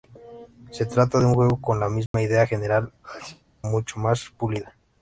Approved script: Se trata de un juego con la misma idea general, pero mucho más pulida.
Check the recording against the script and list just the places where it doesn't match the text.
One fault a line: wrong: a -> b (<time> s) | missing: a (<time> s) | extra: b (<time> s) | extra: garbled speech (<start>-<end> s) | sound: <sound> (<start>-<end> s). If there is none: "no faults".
sound: dropout (2.1-2.1 s)
missing: pero (2.9 s)
sound: sneeze (3.0-3.4 s)